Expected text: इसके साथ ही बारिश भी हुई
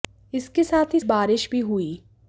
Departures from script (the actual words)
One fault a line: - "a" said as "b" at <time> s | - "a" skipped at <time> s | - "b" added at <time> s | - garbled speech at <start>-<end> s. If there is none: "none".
none